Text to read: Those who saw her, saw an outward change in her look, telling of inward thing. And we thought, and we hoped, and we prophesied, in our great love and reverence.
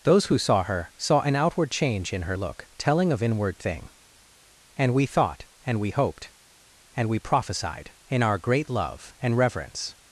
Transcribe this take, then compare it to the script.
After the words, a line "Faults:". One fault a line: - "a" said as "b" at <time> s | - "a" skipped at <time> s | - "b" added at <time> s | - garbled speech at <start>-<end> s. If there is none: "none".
Those who saw her, saw an outward change in her look, telling of inward thing. And we thought, and we hoped, and we prophesied, in our great love and reverence.
Faults:
none